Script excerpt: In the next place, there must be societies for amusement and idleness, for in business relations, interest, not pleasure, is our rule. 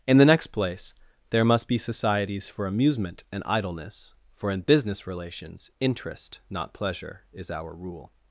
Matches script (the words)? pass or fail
pass